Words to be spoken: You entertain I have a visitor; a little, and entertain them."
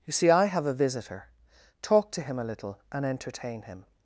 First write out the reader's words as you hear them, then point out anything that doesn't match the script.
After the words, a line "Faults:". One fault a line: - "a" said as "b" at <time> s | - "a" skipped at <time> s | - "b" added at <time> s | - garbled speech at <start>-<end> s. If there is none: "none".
You see I have a visitor; talk to him a little, and entertain him."
Faults:
- "entertain" said as "see" at 0.1 s
- "talk to him" added at 1.8 s
- "them" said as "him" at 3.6 s